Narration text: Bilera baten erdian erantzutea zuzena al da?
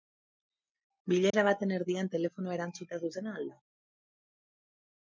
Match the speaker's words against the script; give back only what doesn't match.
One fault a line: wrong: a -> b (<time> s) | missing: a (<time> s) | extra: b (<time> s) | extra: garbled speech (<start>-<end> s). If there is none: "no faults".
extra: telefonoa (2.2 s)